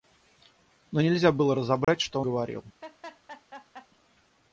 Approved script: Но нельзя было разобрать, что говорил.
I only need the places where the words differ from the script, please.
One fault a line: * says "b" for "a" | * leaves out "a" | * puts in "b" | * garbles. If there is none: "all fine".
all fine